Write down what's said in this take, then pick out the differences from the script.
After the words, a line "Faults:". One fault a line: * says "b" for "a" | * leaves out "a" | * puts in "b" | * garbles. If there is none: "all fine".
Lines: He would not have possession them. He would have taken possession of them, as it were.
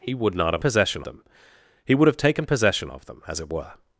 He would not have possession them. He would have taken possession of them, as it were.
Faults:
all fine